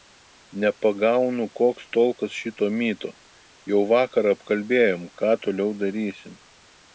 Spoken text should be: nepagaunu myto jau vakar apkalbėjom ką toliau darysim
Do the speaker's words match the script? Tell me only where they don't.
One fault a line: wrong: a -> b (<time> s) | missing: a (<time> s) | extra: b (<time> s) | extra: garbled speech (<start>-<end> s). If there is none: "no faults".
extra: koks tolkas šito (1.6 s)